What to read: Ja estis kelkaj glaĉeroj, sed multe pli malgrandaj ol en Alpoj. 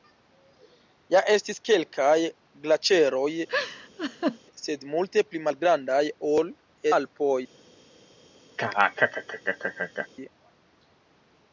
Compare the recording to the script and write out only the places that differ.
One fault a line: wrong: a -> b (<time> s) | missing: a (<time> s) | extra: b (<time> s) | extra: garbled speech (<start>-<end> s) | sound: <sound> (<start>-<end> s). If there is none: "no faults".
sound: laugh (3.5-4.4 s)
missing: en (6.6 s)
sound: laugh (8.6-10.1 s)